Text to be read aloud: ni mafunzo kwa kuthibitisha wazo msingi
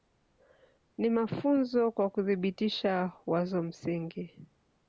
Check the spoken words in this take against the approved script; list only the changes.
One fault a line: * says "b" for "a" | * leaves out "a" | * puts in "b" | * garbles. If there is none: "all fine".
all fine